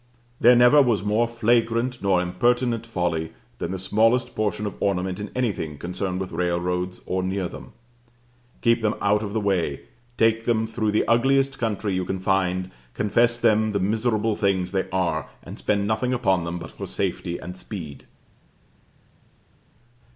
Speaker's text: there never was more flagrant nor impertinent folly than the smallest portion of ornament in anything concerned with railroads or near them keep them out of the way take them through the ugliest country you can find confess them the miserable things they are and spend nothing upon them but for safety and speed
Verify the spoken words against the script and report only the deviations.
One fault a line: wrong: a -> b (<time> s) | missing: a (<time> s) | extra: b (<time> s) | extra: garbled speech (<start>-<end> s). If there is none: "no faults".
no faults